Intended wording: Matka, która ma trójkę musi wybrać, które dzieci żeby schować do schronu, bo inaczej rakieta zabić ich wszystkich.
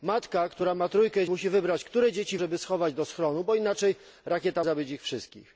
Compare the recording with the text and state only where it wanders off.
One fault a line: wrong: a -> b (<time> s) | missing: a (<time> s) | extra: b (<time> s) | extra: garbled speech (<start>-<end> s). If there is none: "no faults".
no faults